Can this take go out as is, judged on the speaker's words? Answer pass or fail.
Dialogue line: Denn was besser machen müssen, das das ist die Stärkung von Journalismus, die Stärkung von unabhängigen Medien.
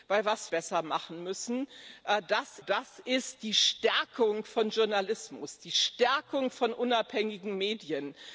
pass